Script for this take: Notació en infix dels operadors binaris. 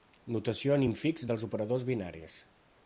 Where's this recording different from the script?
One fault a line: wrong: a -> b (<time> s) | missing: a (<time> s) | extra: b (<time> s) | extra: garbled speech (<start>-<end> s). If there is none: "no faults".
no faults